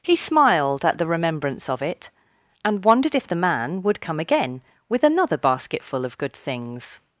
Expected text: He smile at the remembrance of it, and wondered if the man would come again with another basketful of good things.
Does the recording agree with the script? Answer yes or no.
no